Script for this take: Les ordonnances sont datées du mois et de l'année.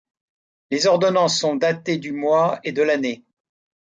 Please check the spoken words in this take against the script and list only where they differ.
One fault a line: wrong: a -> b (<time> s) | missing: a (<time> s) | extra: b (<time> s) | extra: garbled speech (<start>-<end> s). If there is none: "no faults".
no faults